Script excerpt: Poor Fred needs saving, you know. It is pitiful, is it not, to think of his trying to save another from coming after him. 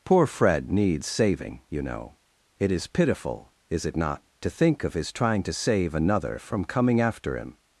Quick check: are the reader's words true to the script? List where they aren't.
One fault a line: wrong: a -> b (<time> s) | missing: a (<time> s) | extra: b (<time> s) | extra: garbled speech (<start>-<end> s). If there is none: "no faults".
no faults